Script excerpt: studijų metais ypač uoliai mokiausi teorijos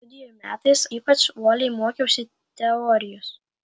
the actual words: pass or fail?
pass